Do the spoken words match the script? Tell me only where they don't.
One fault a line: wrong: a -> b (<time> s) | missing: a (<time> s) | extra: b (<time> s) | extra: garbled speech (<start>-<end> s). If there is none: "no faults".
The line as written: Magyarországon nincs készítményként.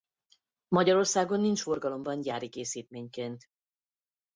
extra: forgalomban gyári (1.6 s)